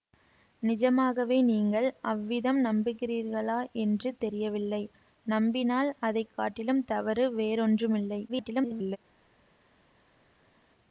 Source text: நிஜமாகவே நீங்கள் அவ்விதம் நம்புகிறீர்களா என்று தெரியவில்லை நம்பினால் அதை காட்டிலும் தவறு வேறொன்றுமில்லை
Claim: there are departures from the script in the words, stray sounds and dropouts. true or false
true